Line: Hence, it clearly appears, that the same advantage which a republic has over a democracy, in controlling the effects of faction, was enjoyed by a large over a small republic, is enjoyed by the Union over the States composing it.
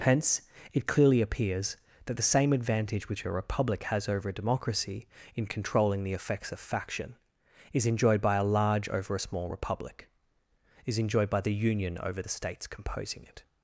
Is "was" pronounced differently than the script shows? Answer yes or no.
yes